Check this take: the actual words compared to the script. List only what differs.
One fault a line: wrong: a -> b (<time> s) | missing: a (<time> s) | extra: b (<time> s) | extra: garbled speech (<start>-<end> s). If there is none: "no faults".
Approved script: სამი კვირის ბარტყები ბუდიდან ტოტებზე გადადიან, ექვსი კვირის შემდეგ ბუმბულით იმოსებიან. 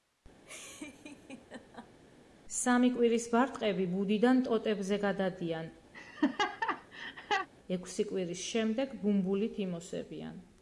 no faults